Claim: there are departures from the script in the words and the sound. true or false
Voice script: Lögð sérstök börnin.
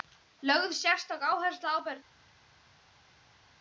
true